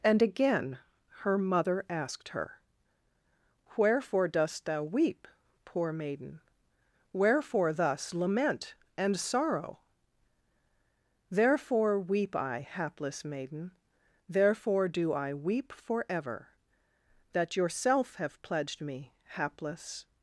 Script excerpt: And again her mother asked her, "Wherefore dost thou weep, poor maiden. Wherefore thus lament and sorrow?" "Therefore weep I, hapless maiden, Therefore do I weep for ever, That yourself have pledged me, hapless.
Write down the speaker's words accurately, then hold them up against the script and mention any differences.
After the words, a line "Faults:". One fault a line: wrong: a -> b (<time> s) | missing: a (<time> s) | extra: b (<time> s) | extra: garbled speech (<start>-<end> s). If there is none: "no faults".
And again her mother asked her, "Wherefore dost thou weep, poor maiden. Wherefore thus lament and sorrow?" "Therefore weep I, hapless maiden, Therefore do I weep for ever, That yourself have pledged me, hapless.
Faults:
no faults